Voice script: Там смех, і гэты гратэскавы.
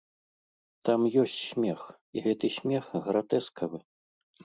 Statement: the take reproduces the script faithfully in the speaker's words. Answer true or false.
false